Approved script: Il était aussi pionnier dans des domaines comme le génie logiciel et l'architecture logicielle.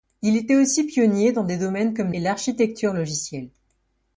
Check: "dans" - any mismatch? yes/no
no